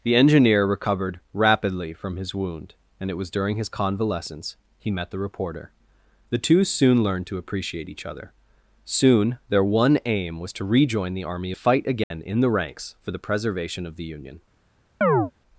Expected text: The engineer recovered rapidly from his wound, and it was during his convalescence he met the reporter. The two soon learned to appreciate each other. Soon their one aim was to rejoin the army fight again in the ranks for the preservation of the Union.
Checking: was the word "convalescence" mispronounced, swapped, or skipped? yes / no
no